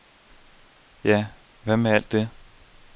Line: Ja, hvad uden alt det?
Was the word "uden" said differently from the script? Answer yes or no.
yes